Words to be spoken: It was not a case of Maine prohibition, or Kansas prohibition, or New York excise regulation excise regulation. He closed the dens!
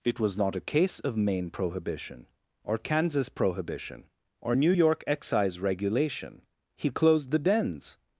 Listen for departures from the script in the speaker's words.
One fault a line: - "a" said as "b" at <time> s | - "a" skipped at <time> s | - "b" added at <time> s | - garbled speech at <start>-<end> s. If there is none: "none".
- "excise regulation" skipped at 6.4 s